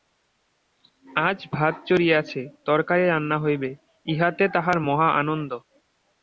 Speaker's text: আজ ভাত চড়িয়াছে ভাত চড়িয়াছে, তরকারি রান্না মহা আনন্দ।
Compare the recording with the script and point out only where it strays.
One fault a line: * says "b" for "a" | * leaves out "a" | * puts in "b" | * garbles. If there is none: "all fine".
* says "তরকারি রান্না হইবে ইহাতে তাহার" for "ভাত চড়িয়াছে তরকারি রান্না"